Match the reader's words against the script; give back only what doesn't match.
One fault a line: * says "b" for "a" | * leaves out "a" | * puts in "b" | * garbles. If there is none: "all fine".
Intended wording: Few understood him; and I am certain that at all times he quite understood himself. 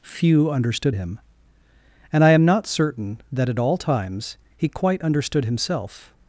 * puts in "not"